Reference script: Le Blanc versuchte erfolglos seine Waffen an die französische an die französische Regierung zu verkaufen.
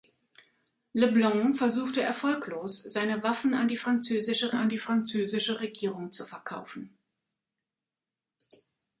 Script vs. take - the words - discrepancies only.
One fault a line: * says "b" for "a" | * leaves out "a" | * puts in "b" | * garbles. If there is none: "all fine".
all fine